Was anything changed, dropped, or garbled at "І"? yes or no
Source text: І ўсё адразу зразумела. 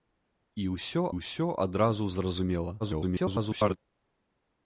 no